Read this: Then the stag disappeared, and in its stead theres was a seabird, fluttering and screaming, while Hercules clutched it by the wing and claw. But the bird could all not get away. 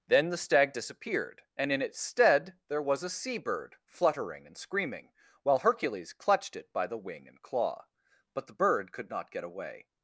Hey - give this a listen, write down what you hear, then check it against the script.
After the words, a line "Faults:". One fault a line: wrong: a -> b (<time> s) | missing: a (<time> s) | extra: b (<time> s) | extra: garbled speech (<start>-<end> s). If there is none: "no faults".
Then the stag disappeared, and in its stead there was a seabird, fluttering and screaming, while Hercules clutched it by the wing and claw. But the bird could not get away.
Faults:
wrong: theres -> there (2.7 s)
missing: all (9.1 s)